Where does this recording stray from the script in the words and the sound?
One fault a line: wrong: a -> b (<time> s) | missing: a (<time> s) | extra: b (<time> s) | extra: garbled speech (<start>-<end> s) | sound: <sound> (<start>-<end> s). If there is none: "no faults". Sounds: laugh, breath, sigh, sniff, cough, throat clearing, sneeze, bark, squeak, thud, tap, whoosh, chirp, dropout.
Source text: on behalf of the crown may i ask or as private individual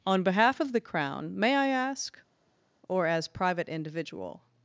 no faults